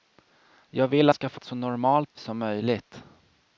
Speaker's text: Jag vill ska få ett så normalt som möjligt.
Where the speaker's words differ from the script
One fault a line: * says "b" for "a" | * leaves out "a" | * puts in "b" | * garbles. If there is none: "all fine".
all fine